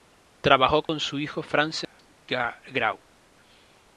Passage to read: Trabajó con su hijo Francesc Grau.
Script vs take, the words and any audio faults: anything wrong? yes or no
yes